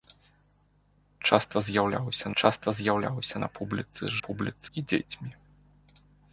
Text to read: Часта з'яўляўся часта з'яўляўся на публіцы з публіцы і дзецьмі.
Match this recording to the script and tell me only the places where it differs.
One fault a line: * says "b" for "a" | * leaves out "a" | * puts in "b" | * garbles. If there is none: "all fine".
all fine